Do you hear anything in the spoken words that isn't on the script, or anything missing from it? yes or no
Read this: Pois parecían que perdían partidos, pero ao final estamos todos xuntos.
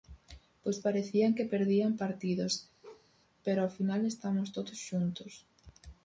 no